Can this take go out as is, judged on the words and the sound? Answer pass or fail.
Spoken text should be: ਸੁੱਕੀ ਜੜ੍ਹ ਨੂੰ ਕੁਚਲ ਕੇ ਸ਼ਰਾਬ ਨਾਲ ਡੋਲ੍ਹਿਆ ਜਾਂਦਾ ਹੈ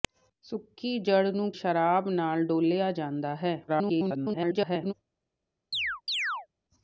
fail